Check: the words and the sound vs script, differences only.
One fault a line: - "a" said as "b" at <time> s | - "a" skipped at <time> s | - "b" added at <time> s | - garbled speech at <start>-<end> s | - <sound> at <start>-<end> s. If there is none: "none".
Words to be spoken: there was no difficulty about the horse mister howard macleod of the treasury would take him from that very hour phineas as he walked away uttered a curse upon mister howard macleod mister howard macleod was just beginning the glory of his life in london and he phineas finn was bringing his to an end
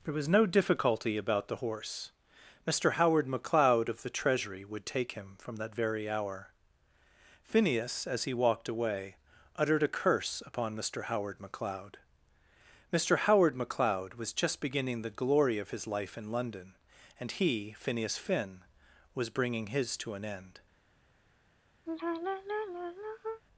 - sigh at 21.9-23.4 s